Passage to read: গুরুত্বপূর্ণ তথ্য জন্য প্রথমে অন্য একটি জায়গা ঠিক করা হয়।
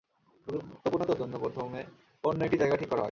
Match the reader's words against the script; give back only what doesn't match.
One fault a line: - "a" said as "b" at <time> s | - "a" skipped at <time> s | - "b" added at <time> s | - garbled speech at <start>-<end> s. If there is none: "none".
none